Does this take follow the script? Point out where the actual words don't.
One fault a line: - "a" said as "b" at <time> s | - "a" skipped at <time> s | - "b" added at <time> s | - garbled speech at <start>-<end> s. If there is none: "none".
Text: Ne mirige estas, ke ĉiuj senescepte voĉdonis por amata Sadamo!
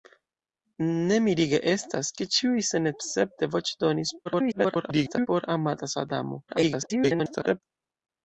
- garbled speech at 4.3-5.3 s
- garbled speech at 6.5-7.6 s